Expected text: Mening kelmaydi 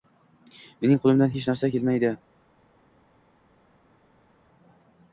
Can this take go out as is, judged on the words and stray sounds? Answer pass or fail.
fail